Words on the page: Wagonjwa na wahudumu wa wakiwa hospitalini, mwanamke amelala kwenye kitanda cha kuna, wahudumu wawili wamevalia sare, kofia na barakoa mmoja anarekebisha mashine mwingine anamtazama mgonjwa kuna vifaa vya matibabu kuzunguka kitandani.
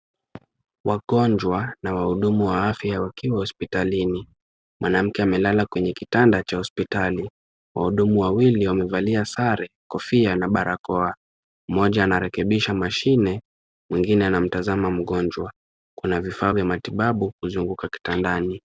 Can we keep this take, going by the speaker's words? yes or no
no